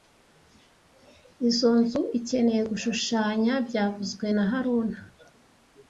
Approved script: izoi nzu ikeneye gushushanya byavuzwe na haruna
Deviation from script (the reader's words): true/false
false